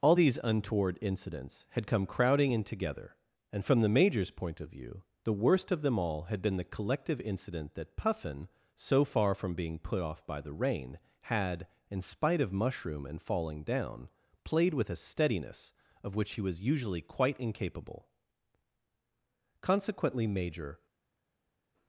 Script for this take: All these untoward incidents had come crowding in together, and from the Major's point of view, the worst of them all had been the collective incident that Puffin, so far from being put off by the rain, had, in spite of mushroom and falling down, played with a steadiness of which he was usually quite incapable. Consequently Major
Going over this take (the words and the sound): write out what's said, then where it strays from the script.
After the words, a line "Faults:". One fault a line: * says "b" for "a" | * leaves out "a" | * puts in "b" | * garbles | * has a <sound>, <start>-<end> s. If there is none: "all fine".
All these untoward incidents had come crowding in together, and from the Major's point of view, the worst of them all had been the collective incident that Puffin, so far from being put off by the rain, had, in spite of mushroom and falling down, played with a steadiness of which he was usually quite incapable. Consequently Major
Faults:
all fine